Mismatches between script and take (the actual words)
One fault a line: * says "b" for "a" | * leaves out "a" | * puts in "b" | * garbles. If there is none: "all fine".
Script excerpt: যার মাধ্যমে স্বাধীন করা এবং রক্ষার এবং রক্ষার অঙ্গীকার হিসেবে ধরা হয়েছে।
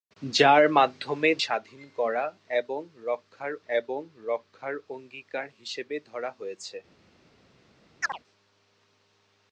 all fine